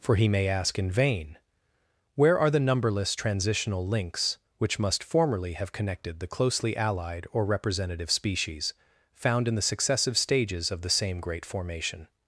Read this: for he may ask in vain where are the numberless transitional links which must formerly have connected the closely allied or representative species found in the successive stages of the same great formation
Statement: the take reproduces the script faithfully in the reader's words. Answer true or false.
true